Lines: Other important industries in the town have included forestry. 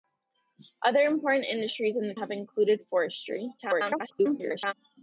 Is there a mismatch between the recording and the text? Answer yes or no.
yes